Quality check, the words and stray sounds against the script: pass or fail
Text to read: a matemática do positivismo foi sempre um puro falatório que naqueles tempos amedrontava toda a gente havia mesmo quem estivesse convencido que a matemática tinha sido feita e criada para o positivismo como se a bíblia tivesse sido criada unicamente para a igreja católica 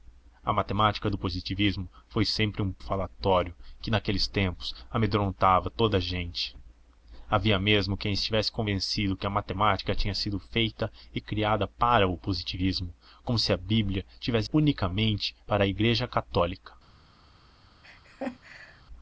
fail